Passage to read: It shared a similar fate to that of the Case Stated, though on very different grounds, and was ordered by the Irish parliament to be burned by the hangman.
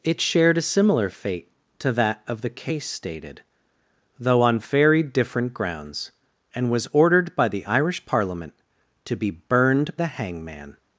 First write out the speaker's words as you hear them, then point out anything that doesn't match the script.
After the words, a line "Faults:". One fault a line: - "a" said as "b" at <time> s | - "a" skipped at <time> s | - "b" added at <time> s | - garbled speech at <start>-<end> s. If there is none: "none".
It shared a similar fate to that of the Case Stated, though on very different grounds, and was ordered by the Irish parliament to be burned the hangman.
Faults:
- "by" skipped at 10.0 s